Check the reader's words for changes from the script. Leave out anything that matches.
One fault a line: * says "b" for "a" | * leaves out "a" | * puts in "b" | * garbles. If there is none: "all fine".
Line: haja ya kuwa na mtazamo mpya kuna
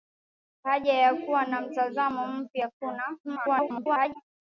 * garbles